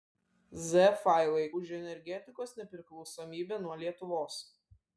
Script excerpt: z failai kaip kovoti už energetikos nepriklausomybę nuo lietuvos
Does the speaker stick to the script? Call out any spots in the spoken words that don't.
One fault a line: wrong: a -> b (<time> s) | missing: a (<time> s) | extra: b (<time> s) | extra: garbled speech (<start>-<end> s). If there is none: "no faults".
missing: kaip kovoti (1.4 s)